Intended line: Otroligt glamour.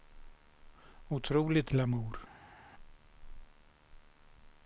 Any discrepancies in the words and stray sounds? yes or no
no